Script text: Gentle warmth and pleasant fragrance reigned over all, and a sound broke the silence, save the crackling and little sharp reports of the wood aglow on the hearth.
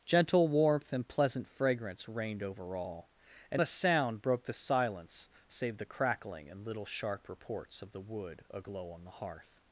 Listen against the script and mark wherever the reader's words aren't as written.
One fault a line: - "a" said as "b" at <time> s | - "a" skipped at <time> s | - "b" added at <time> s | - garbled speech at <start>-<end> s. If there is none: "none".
none